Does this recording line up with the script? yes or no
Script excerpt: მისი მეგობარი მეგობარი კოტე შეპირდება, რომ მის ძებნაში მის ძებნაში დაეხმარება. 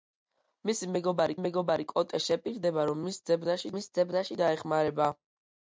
yes